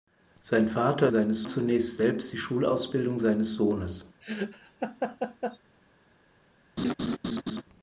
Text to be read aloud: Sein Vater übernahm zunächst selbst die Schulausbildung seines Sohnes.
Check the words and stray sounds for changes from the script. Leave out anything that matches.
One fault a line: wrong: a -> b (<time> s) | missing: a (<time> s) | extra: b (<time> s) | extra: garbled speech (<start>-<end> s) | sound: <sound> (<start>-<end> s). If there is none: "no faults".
wrong: übernahm -> seines (1.1 s)
sound: laugh (4.2-5.6 s)
sound: laugh (6.8-7.6 s)